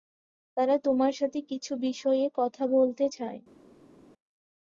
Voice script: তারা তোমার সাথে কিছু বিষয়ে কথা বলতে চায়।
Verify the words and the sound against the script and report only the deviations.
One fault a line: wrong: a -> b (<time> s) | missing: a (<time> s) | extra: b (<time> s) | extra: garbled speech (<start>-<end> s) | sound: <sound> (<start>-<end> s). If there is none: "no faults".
no faults